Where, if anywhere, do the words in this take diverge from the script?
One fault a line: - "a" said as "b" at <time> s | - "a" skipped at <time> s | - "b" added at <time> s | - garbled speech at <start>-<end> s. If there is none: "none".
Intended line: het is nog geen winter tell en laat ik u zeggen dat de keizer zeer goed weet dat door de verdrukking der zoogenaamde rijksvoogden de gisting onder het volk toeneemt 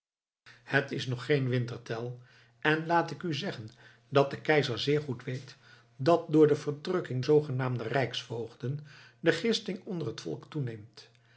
- "der" skipped at 7.2 s